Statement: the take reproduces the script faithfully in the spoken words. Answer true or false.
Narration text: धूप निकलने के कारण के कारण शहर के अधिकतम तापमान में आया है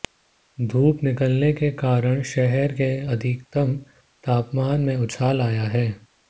false